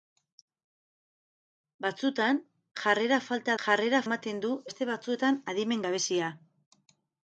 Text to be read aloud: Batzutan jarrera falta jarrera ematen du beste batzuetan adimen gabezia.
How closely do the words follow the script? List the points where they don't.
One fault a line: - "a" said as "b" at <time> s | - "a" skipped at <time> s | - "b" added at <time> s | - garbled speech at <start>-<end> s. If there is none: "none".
none